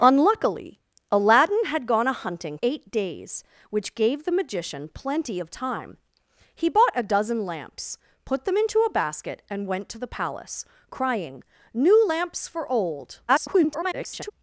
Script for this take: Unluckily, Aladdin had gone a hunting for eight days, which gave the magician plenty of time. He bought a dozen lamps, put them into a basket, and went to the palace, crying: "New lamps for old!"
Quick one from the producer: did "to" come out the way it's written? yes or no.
yes